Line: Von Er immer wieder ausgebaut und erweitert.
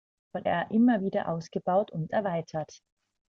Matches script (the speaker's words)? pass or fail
pass